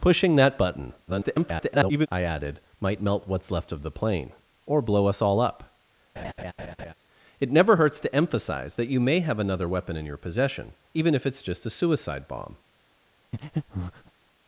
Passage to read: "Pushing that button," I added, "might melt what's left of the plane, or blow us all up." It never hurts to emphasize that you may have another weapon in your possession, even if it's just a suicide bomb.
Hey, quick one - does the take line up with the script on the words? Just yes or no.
no